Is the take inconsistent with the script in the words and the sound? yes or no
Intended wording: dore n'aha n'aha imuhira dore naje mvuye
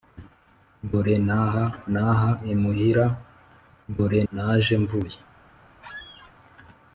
yes